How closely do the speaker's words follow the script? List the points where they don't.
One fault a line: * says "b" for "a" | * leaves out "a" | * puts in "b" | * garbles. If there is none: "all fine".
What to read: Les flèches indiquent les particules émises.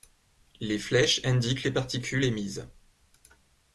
all fine